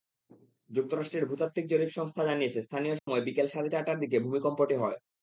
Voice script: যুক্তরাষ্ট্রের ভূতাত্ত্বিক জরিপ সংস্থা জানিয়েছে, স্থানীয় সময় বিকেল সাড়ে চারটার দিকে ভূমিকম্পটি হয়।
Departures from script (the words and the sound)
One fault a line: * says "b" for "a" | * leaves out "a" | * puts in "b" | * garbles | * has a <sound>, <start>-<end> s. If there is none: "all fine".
* has a dropout, 3.0-3.1 s